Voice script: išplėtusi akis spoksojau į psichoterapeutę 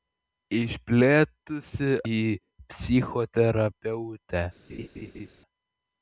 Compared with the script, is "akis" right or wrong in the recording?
wrong